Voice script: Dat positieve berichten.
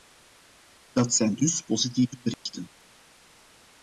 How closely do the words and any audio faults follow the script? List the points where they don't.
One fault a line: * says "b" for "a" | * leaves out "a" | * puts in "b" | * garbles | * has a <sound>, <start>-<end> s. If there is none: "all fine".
* puts in "zijn dus"
* has a dropout, 2.3-2.5 s